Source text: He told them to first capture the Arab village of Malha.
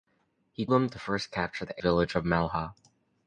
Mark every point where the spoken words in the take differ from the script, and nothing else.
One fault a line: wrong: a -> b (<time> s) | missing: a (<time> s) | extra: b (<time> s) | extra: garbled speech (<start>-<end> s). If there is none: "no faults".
missing: told (0.7 s)
missing: Arab (1.8 s)